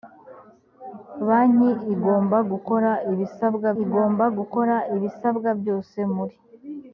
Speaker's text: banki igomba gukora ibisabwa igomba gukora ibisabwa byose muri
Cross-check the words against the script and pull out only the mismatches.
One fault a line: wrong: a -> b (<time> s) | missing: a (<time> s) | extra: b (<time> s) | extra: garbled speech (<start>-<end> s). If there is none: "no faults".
no faults